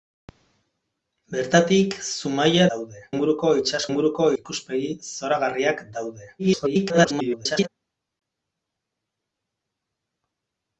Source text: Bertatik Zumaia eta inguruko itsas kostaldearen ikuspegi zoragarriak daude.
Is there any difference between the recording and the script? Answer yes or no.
yes